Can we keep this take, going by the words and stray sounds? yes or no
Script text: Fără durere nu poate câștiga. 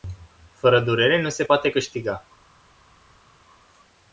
no